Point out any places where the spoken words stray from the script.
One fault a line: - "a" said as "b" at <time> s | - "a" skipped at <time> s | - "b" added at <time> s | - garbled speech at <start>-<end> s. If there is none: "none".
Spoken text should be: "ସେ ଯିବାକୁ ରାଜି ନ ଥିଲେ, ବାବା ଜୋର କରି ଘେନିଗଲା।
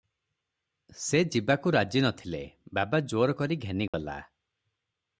none